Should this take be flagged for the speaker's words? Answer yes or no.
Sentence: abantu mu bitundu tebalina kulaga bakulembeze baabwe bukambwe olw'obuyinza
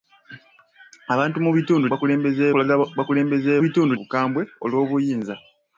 yes